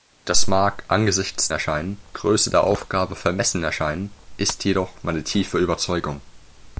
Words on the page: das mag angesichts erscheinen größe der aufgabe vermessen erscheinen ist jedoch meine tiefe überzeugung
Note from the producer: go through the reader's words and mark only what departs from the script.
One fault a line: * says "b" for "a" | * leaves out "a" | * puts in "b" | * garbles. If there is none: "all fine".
all fine